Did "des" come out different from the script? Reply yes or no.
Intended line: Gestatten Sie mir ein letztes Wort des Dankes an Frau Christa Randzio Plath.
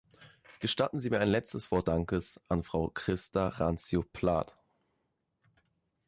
yes